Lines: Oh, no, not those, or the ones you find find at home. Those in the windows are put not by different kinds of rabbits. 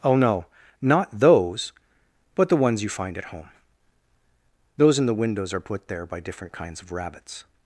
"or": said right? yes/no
no